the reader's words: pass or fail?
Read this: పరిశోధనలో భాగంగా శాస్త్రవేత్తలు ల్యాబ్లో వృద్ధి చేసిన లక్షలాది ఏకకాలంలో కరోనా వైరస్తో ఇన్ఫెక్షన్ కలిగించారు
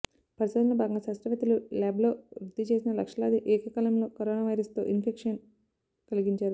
pass